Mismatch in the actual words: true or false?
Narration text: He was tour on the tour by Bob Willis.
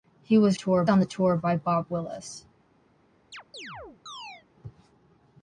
false